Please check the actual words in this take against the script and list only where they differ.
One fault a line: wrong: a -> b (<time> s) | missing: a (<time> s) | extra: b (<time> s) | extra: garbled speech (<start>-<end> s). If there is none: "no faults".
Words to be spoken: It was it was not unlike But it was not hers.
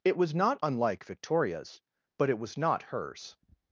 missing: it was (0.3 s)
extra: Victoria's (1.0 s)